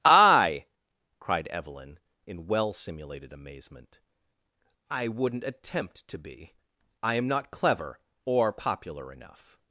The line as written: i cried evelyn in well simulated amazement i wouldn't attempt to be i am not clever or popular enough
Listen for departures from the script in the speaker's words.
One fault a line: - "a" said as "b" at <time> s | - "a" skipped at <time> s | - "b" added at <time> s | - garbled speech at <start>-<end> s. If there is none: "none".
none